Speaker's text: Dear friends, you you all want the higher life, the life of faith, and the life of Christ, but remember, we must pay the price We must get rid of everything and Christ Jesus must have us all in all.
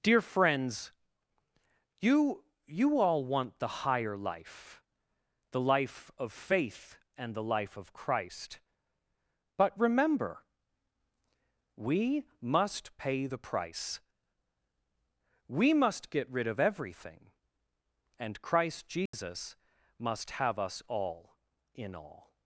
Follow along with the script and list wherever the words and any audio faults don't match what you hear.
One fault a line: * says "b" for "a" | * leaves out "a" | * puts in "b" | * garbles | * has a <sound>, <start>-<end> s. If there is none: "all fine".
* has a dropout, 19.1-19.1 s